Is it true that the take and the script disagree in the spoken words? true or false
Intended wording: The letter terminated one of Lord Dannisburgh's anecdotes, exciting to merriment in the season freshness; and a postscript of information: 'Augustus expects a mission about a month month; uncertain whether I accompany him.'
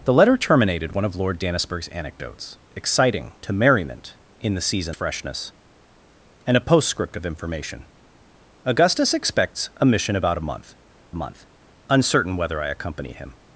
false